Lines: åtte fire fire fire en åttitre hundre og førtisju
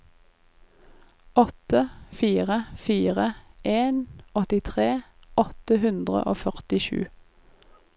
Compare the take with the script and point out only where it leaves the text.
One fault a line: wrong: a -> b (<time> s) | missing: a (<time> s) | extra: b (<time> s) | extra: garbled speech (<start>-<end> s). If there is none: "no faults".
missing: fire (3.3 s)
extra: åtte (5.5 s)